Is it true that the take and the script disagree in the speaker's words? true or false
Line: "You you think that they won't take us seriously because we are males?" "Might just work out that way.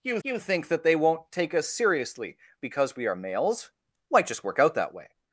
false